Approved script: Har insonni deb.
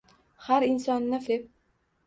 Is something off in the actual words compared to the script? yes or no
no